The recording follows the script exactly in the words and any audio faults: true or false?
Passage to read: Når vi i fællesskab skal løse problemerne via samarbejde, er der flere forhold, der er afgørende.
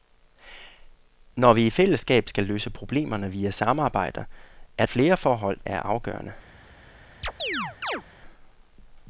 false